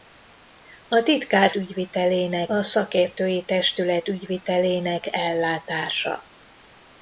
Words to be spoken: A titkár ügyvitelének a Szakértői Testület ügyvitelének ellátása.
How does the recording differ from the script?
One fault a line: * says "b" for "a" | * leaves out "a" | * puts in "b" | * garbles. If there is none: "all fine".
all fine